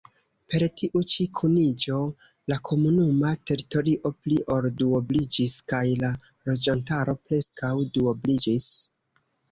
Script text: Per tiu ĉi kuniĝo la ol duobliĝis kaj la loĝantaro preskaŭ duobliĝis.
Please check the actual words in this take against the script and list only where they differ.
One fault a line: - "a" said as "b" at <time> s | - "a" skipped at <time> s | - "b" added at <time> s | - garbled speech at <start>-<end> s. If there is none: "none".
- "komunuma teritorio pli" added at 2.7 s